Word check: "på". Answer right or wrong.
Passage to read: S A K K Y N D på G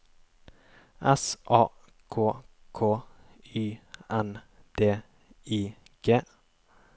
wrong